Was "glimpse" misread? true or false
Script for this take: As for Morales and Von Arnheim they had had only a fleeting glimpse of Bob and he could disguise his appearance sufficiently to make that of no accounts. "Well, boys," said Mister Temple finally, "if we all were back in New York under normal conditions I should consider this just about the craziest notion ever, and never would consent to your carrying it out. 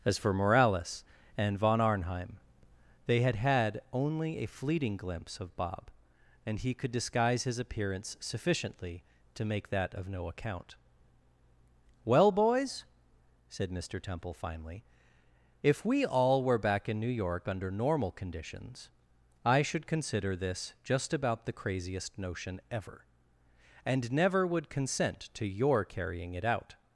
false